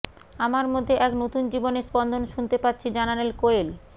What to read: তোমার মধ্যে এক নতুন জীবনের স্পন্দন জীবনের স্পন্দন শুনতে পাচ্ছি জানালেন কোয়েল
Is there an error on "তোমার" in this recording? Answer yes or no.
yes